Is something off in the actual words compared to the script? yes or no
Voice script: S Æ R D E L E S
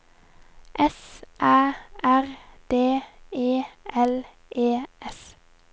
no